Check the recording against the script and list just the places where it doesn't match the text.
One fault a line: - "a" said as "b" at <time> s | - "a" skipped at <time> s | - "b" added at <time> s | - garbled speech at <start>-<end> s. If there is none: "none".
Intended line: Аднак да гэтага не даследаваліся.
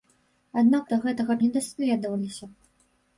none